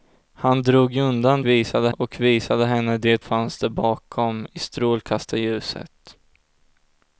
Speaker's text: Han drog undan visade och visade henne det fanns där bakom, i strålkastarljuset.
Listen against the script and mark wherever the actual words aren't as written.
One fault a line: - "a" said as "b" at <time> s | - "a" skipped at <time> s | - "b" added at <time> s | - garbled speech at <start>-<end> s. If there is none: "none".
none